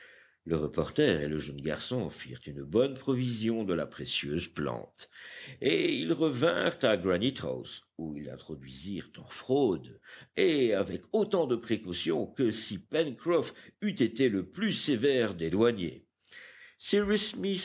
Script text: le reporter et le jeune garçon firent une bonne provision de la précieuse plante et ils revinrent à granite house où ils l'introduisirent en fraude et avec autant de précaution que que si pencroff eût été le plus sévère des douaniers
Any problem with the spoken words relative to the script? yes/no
yes